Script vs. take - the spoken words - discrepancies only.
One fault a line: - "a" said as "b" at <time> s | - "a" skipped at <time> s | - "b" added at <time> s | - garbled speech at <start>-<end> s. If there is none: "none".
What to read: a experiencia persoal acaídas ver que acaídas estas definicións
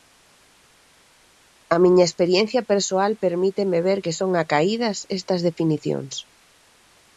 - "miña" added at 1.8 s
- "acaídas" said as "permíteme" at 3.2 s
- "son" added at 4.2 s